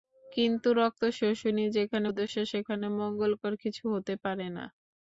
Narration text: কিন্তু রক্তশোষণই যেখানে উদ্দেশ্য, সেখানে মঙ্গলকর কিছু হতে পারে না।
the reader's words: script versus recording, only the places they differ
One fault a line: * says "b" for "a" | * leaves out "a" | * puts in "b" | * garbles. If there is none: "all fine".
all fine